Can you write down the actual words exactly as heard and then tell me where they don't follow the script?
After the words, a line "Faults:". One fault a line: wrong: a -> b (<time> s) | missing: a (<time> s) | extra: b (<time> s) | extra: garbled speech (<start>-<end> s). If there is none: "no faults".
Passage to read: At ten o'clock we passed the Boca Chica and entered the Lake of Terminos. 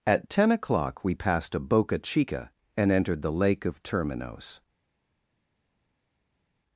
At ten o'clock we passed a Boca Chica and entered the Lake of Terminos.
Faults:
wrong: the -> a (1.5 s)